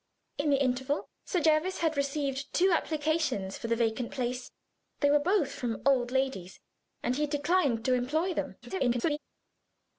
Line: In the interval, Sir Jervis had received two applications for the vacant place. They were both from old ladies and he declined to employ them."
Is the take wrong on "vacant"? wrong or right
right